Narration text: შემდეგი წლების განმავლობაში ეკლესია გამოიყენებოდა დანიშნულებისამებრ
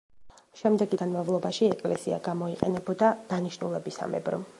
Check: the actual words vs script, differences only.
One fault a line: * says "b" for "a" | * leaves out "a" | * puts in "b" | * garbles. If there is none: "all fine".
* leaves out "წლების"